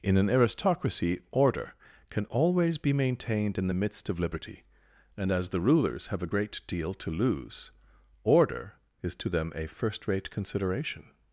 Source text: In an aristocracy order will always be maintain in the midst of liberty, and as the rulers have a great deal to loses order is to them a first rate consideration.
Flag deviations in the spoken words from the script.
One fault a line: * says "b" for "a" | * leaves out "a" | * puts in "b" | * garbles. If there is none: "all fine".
* says "can" for "will"
* says "maintained" for "maintain"
* says "lose" for "loses"